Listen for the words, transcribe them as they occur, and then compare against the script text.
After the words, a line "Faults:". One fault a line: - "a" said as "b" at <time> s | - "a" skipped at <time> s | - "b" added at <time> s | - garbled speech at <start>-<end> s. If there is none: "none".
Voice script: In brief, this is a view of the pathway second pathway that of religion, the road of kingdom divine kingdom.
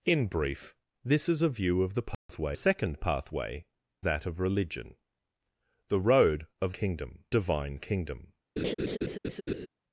In brief, this is a view of the pathway second pathway that of religion, the road of kingdom divine kingdom.
Faults:
none